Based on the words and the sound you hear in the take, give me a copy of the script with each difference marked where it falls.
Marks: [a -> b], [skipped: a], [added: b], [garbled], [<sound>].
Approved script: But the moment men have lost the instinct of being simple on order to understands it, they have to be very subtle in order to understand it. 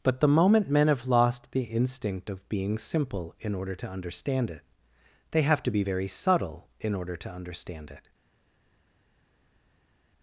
But the moment men have lost the instinct of being simple [on -> in] order to [understands -> understand] it, they have to be very subtle in order to understand it.